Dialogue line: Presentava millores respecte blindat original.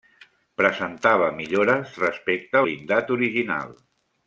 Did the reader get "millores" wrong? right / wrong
right